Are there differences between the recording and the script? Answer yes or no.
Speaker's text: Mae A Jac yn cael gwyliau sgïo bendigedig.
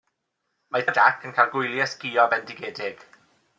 no